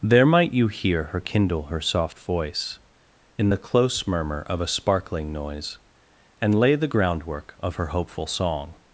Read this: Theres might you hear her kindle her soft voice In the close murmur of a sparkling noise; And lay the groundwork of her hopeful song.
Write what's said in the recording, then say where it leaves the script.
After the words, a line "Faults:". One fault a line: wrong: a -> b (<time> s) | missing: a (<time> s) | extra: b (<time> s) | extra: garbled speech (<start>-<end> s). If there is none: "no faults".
There might you hear her kindle her soft voice In the close murmur of a sparkling noise; And lay the groundwork of her hopeful song.
Faults:
wrong: Theres -> There (0.0 s)